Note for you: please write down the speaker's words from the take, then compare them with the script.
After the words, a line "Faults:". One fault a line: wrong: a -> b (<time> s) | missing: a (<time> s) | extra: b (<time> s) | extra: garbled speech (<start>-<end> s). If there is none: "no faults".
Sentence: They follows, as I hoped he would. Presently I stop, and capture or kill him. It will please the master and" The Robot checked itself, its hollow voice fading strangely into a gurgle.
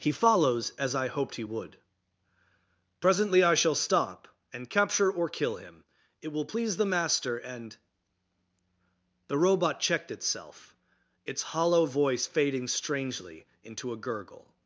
He follows, as I hoped he would. Presently I shall stop, and capture or kill him. It will please the master and" The Robot checked itself, its hollow voice fading strangely into a gurgle.
Faults:
wrong: They -> He (0.0 s)
extra: shall (3.5 s)